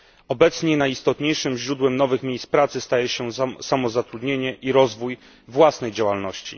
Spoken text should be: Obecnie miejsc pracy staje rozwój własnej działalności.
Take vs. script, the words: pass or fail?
fail